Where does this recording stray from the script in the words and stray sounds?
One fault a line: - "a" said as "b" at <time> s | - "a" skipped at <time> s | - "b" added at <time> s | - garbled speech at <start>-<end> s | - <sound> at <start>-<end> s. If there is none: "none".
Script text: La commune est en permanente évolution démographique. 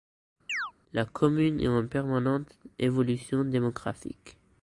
- chirp at 0.5-0.7 s